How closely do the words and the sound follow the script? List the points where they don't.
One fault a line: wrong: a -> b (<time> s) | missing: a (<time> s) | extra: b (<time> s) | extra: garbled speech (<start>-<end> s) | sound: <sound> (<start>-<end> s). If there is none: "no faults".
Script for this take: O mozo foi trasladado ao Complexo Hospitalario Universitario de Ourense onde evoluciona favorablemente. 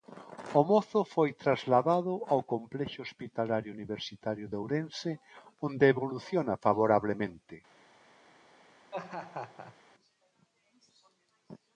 sound: laugh (8.9-9.8 s)